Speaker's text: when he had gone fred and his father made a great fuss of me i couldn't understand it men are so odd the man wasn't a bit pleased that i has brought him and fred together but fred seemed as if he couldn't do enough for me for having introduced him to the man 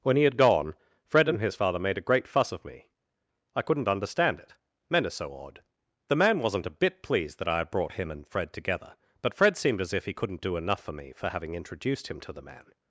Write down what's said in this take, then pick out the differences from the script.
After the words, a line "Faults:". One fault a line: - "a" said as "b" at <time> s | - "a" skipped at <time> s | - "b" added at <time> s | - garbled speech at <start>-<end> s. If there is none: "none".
when he had gone fred and his father made a great fuss of me i couldn't understand it men are so odd the man wasn't a bit pleased that i had brought him and fred together but fred seemed as if he couldn't do enough for me for having introduced him to the man
Faults:
- "has" said as "had" at 7.6 s